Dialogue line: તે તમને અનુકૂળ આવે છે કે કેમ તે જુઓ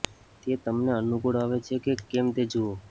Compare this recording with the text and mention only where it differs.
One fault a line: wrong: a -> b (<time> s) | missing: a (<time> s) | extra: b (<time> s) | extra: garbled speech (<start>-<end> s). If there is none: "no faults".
no faults